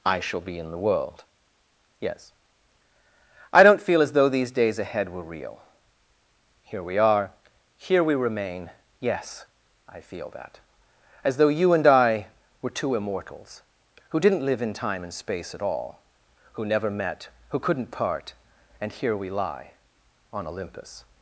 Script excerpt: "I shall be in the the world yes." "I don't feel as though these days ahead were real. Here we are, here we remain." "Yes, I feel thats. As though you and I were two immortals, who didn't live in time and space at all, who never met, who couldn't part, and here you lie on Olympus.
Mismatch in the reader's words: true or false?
true